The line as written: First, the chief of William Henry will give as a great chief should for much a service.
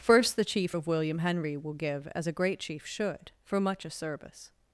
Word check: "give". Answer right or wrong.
right